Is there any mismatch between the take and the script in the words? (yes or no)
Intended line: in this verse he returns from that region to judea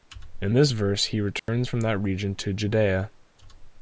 no